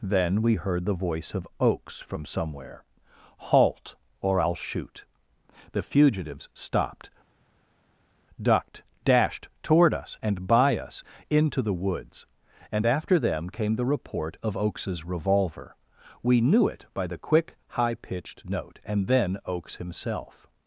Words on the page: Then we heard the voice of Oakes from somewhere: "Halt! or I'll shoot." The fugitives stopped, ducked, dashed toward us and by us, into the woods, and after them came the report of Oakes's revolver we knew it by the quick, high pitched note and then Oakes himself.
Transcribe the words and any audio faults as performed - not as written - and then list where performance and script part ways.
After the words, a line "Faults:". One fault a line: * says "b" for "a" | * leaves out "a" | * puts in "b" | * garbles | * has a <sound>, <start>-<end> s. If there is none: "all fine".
Then we heard the voice of Oakes from somewhere: "Halt! or I'll shoot." The fugitives stopped, ducked, dashed toward us and by us, into the woods, and after them came the report of Oakes's revolver we knew it by the quick, high pitched note and then Oakes himself.
Faults:
all fine